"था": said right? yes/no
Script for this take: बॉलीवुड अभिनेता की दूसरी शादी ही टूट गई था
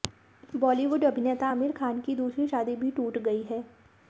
no